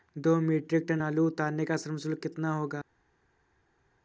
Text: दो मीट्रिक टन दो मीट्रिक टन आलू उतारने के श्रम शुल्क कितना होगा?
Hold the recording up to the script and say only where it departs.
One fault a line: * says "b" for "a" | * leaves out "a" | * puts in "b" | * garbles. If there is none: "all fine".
* leaves out "दो मीट्रिक टन"
* says "का" for "के"